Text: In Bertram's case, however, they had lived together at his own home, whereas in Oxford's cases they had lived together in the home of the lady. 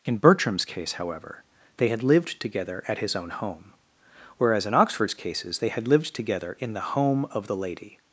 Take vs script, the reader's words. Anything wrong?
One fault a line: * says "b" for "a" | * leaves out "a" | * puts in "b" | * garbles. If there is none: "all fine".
all fine